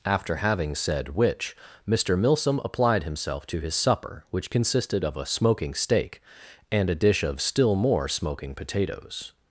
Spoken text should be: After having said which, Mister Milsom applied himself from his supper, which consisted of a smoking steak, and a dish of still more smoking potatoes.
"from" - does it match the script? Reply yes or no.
no